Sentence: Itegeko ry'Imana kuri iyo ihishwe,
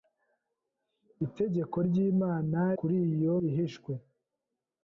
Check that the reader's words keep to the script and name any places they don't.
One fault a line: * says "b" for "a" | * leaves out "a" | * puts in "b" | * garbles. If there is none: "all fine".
all fine